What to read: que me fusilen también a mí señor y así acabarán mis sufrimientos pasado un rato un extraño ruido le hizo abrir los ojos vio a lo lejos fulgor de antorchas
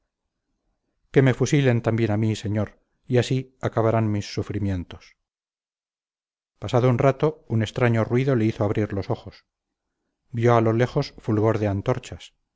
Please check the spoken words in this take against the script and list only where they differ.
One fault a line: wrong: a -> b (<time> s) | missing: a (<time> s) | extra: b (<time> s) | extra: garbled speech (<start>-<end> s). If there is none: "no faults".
no faults